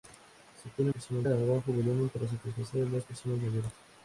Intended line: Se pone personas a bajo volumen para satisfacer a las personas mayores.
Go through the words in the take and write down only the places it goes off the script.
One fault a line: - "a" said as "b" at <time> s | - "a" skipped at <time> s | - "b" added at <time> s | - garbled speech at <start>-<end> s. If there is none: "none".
none